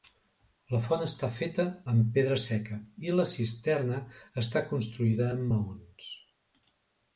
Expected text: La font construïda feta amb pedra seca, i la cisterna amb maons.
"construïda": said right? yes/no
no